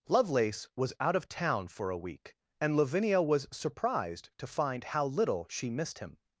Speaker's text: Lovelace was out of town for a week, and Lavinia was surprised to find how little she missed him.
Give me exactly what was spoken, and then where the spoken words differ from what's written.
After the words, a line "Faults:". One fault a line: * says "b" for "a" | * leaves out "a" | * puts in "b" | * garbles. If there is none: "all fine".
Lovelace was out of town for a week, and Lavinia was surprised to find how little she missed him.
Faults:
all fine